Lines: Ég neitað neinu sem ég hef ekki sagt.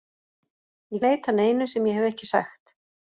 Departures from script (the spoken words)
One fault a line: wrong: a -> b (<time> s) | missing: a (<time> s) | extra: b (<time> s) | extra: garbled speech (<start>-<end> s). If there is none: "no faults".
no faults